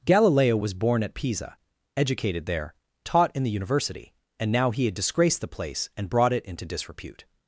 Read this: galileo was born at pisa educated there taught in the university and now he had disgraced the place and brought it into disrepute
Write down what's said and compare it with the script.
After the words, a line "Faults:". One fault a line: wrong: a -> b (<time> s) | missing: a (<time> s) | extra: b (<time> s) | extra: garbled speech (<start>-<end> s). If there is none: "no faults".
galileo was born at pisa educated there taught in the university and now he had disgraced the place and brought it into disrepute
Faults:
no faults